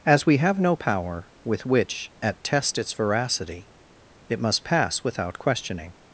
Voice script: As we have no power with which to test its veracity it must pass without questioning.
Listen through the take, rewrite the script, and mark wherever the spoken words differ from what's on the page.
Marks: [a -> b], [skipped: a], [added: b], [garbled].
As we have no power with which [to -> at] test its veracity it must pass without questioning.